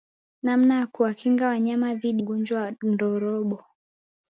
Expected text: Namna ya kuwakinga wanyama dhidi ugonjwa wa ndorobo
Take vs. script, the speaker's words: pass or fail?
pass